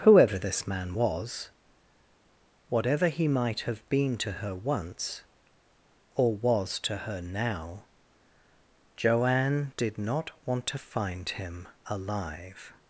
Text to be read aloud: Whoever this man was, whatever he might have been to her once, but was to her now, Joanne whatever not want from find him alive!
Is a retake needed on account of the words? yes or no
yes